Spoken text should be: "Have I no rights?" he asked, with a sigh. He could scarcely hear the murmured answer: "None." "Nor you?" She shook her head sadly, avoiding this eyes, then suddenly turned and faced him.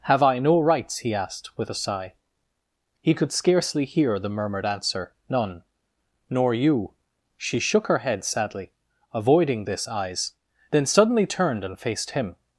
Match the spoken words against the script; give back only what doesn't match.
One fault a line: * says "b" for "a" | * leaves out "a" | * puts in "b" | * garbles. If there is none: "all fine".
all fine